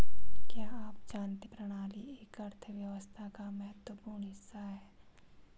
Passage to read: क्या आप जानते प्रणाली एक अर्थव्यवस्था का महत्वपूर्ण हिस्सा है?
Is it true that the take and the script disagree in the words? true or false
false